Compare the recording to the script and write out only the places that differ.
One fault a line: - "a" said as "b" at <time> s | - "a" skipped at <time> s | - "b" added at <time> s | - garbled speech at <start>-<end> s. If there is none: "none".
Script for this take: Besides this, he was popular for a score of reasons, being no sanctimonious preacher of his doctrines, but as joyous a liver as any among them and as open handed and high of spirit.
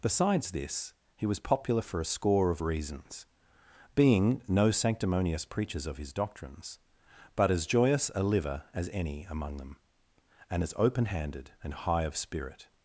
- "preacher" said as "preachers" at 5.4 s